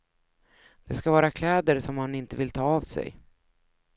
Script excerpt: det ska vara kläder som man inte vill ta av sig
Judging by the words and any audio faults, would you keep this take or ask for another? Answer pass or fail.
pass